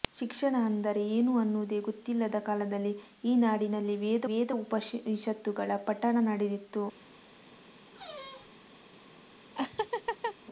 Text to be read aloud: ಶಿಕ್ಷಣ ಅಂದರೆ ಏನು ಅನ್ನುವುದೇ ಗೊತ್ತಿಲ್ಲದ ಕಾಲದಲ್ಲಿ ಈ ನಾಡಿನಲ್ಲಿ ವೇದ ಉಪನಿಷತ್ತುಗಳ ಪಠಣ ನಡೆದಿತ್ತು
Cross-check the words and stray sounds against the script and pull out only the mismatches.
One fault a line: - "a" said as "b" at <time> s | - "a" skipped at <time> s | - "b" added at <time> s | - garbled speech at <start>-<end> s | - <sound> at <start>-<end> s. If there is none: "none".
- "ವೇದ" added at 4.2 s
- squeak at 7.9-8.5 s
- laugh at 9.6-10.4 s